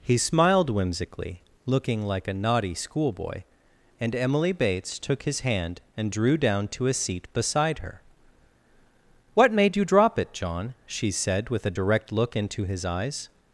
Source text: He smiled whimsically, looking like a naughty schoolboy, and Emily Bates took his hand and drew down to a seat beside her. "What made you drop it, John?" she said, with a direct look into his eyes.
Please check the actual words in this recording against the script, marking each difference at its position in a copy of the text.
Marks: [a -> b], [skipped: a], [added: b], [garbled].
He smiled whimsically, looking like a naughty schoolboy, and Emily Bates took his hand and drew down to a seat beside her. "What made you drop it, John?" she said, with a direct look into his eyes.